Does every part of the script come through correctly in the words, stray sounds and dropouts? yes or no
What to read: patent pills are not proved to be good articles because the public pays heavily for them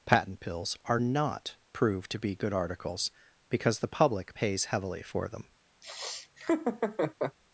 no